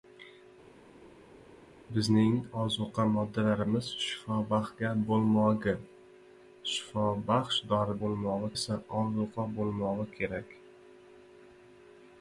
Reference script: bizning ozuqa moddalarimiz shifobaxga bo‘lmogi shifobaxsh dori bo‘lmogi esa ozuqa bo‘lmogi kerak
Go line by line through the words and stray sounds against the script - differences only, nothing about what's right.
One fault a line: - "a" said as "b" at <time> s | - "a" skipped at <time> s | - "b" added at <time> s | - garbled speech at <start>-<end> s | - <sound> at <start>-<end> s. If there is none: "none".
none